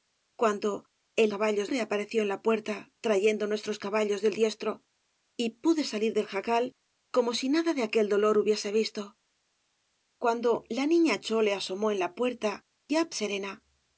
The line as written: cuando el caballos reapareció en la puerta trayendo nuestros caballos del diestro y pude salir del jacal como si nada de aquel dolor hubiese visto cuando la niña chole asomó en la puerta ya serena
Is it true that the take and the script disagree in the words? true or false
false